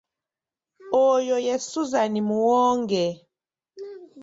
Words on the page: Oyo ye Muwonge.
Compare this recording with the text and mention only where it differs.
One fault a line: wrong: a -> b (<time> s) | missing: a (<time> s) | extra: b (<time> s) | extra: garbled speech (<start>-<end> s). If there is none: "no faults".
extra: Suzan (1.7 s)